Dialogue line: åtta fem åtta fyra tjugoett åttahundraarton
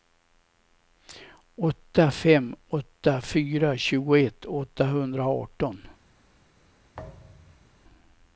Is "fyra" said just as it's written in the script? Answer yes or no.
yes